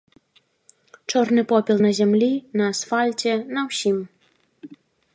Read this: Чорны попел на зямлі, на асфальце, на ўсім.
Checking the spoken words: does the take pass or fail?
pass